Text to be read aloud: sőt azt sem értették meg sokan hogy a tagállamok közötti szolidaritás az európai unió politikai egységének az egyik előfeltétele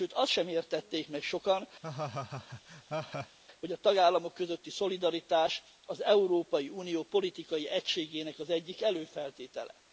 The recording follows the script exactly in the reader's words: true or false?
true